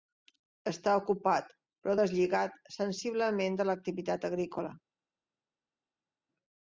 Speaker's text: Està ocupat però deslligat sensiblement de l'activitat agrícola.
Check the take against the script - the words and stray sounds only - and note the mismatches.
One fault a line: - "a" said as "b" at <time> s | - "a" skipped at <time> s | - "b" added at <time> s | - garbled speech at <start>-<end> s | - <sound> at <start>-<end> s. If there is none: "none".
none